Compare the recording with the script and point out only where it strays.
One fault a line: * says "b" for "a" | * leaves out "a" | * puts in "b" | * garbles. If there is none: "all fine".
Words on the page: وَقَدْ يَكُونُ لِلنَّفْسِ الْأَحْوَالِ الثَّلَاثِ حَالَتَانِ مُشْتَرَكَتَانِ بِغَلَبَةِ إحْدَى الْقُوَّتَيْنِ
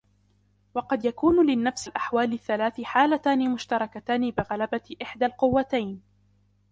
all fine